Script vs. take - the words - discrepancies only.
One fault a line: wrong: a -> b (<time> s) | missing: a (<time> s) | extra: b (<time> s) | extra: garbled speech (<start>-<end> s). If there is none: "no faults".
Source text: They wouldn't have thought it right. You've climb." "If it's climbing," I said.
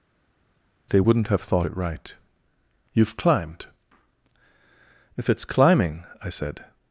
wrong: climb -> climbed (3.2 s)